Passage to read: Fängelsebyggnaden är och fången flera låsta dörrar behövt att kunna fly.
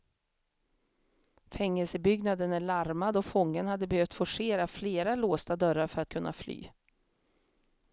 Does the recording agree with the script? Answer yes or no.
no